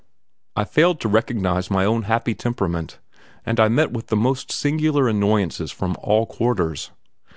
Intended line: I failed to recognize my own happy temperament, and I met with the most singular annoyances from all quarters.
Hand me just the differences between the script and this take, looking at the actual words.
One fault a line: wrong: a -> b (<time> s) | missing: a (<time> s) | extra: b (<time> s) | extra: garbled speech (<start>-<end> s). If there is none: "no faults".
no faults